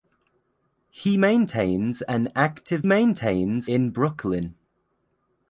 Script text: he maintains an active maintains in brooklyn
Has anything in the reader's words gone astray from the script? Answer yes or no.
no